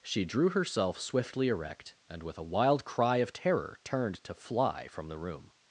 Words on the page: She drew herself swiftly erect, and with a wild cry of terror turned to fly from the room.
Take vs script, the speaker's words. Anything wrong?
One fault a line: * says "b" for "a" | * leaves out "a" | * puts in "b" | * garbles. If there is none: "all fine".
all fine